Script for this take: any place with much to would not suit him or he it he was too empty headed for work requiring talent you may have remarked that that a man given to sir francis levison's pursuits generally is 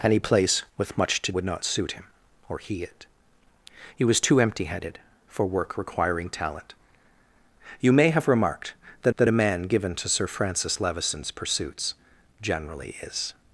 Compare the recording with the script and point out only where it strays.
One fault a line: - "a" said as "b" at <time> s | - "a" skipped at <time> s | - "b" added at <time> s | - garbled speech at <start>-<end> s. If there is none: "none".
none